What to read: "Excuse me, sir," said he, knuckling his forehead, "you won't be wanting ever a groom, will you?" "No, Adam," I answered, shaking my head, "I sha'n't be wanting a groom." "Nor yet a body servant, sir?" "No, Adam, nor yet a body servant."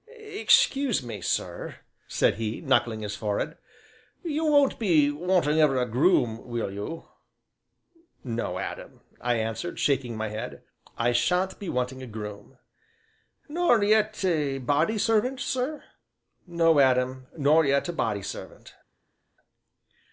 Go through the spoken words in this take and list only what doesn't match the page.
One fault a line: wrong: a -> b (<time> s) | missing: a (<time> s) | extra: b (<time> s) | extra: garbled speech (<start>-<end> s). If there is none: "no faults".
no faults